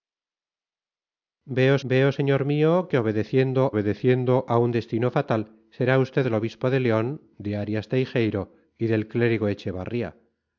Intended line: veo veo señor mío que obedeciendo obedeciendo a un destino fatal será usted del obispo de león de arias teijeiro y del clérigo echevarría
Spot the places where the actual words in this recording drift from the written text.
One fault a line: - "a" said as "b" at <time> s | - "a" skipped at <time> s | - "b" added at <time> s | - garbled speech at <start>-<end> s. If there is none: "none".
none